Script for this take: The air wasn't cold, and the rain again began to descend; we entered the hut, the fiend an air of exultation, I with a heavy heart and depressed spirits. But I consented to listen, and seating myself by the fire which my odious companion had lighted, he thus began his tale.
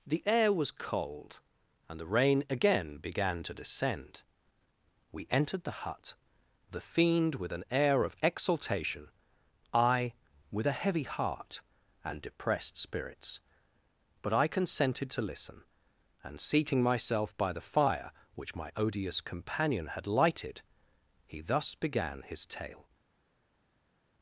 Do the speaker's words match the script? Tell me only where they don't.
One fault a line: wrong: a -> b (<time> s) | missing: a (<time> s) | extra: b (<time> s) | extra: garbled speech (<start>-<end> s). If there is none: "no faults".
wrong: wasn't -> was (0.5 s)
extra: with (7.3 s)